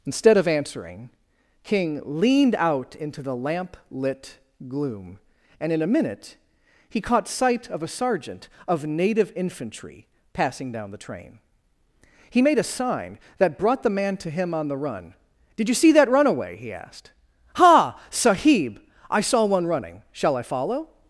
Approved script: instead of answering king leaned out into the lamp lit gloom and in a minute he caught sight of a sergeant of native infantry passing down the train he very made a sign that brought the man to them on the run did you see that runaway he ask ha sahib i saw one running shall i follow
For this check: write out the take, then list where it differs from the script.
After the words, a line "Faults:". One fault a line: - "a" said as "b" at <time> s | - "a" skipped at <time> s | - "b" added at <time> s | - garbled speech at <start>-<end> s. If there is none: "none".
instead of answering king leaned out into the lamp lit gloom and in a minute he caught sight of a sergeant of native infantry passing down the train he made a sign that brought the man to him on the run did you see that runaway he asked ha sahib i saw one running shall i follow
Faults:
- "very" skipped at 12.4 s
- "them" said as "him" at 14.3 s
- "ask" said as "asked" at 16.7 s